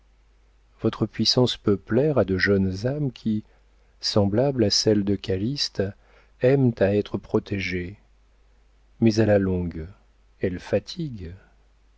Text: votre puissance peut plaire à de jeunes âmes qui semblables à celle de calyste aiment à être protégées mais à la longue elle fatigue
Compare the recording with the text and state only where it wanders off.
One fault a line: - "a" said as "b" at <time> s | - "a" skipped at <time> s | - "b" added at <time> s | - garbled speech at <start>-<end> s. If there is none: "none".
none